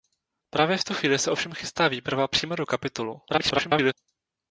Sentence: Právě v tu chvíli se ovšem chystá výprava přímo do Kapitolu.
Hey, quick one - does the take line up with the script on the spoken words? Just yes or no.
no